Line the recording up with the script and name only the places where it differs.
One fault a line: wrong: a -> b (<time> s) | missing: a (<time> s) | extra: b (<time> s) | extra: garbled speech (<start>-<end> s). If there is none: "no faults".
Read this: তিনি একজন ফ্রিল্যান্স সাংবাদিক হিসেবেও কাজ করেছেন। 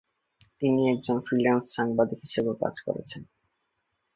no faults